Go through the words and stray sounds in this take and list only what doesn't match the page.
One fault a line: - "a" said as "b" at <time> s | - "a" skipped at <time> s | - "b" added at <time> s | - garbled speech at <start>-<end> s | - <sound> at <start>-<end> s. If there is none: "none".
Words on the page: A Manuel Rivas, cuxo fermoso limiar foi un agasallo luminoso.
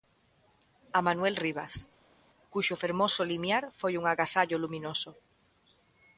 none